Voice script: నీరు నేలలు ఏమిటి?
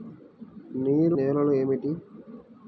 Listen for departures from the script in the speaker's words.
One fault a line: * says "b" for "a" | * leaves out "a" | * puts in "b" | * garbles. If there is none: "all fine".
all fine